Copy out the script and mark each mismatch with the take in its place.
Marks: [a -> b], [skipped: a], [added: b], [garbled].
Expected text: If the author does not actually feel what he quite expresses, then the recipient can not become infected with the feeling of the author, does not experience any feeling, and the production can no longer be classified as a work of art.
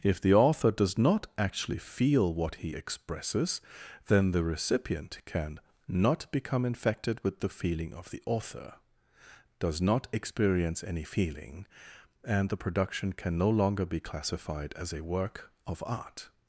If the author does not actually feel what he [skipped: quite] expresses, then the recipient can not become infected with the feeling of the author, does not experience any feeling, and the production can no longer be classified as a work of art.